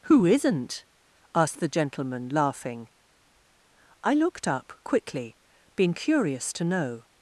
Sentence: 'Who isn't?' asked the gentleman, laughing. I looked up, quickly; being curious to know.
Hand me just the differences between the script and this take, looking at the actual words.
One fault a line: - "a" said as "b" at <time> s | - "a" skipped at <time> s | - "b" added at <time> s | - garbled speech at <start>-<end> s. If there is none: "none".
none